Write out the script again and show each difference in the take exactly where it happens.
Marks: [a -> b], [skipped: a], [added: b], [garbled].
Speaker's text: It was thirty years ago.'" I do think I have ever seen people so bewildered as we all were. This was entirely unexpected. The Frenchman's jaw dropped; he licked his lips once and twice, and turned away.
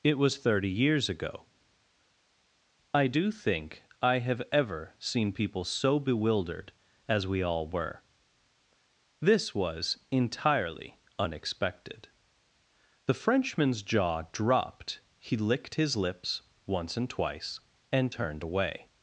It was thirty years ago.'" I do think I have ever seen people so bewildered as we all were. This was entirely unexpected. The Frenchman's jaw dropped; he licked his lips once and twice, and turned away.